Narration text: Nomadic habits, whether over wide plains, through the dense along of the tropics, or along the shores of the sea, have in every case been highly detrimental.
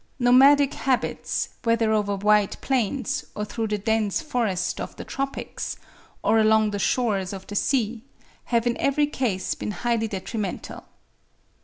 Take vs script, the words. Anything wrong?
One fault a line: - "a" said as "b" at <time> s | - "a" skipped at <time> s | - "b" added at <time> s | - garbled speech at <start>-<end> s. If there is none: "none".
- "or" added at 3.4 s
- "along" said as "forests" at 4.2 s